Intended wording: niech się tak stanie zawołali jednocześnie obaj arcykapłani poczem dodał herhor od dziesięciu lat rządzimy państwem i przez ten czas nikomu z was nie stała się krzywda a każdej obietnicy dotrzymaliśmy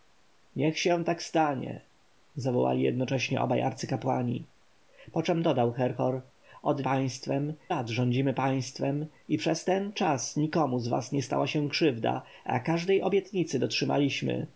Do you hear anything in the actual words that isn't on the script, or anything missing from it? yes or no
yes